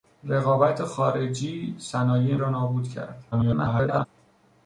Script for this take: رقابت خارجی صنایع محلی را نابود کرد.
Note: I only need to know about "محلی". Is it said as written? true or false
false